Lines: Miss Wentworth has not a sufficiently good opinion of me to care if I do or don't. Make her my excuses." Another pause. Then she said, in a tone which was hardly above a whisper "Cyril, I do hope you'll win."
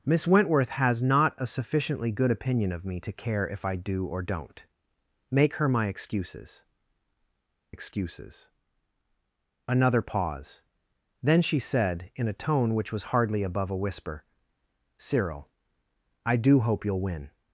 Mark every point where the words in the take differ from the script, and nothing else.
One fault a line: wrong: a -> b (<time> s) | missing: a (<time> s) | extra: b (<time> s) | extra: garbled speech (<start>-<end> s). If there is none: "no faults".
extra: excuses (7.7 s)